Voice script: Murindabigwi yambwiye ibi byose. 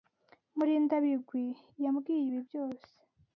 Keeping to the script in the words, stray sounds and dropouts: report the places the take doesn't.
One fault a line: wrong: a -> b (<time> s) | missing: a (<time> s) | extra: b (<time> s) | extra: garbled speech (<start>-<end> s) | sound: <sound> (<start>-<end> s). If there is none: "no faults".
no faults